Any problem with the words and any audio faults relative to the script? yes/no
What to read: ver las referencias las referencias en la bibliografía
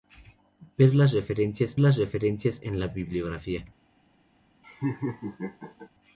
yes